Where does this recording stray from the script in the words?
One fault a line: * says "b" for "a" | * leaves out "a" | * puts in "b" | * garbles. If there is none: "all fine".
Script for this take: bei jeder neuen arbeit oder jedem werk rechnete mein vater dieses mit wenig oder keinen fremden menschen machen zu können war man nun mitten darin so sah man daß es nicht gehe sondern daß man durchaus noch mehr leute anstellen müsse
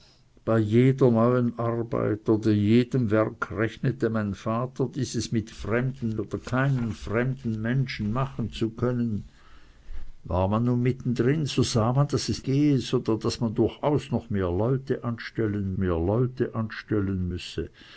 * says "fremden" for "wenig"
* leaves out "nicht"
* puts in "mehr leute anstellen"